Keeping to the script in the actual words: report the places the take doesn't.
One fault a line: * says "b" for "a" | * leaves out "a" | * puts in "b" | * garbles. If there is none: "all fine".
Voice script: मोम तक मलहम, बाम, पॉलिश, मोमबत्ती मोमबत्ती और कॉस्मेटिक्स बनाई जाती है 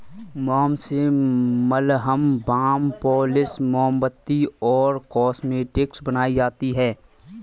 * says "से" for "तक"
* leaves out "मोमबत्ती"